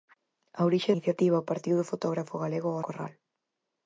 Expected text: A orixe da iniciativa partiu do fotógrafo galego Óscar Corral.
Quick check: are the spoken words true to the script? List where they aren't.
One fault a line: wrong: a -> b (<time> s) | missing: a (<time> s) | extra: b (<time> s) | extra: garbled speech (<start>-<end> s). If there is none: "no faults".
missing: da (0.9 s)
missing: Óscar (2.8 s)